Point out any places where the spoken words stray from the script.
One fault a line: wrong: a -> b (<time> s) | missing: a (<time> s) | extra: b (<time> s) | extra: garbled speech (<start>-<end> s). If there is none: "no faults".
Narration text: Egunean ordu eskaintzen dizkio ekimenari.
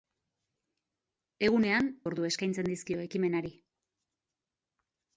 no faults